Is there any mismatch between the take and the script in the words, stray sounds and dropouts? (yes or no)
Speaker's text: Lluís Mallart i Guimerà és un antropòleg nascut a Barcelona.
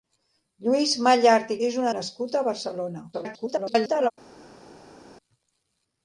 yes